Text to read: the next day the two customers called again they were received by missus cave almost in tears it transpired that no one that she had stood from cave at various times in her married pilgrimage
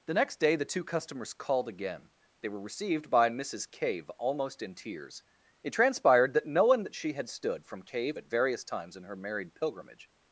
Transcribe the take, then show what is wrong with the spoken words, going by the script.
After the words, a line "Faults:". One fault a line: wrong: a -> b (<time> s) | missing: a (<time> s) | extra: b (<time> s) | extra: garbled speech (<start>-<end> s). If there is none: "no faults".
the next day the two customers called again they were received by missus cave almost in tears it transpired that no one that she had stood from cave at various times in her married pilgrimage
Faults:
no faults